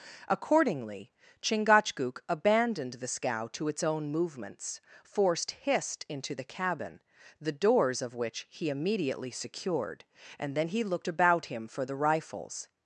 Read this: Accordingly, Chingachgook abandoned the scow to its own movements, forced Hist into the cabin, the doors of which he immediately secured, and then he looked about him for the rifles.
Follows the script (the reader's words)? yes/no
yes